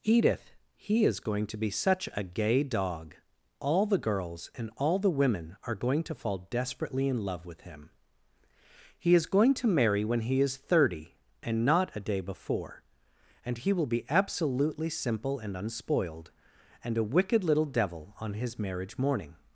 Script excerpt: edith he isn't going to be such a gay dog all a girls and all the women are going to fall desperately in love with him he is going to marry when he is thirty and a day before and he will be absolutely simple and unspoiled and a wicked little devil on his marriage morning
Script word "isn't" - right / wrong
wrong